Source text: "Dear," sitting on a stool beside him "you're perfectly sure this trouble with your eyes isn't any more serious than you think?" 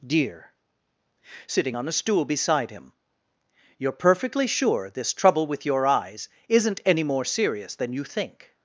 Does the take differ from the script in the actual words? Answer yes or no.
no